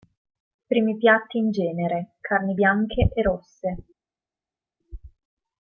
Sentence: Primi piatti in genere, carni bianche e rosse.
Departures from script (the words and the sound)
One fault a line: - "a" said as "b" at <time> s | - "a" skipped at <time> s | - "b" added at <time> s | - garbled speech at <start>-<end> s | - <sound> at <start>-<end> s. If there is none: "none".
none